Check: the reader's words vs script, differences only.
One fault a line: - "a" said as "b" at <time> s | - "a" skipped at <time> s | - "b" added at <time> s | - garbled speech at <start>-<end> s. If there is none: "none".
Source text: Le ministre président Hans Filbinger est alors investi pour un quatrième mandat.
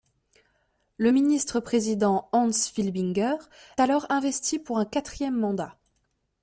- "est" skipped at 3.4 s